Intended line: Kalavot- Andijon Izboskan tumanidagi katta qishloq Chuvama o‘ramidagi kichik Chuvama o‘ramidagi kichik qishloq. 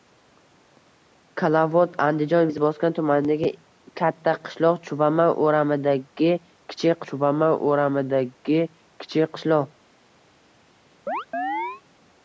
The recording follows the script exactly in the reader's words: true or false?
true